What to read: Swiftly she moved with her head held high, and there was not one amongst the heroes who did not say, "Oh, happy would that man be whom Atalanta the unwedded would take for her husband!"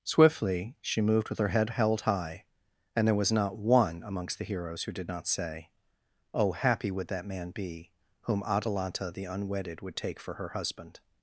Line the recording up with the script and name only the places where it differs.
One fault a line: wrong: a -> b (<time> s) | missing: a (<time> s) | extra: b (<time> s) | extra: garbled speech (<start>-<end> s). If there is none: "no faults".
no faults